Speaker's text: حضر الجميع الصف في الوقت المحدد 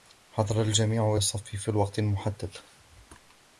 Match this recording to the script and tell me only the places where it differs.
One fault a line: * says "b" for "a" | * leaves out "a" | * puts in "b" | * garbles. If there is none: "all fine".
all fine